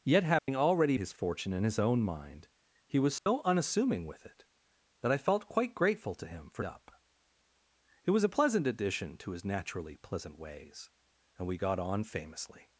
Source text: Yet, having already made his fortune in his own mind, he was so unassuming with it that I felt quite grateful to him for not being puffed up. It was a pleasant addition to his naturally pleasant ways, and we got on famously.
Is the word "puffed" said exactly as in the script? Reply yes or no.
no